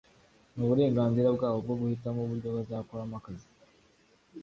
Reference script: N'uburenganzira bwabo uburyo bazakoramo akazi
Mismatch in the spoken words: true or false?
true